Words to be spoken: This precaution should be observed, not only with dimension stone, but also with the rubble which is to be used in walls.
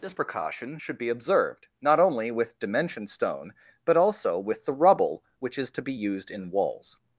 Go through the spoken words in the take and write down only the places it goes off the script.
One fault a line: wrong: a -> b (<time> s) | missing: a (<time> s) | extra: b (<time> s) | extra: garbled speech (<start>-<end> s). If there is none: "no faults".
no faults